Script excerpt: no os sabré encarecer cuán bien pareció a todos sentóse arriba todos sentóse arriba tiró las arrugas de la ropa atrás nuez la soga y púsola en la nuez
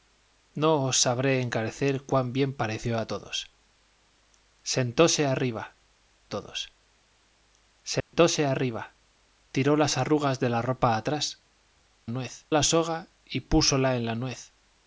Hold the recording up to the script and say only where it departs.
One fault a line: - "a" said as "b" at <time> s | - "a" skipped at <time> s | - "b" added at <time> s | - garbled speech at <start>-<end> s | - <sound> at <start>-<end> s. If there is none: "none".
- dropout at 8.0-8.1 s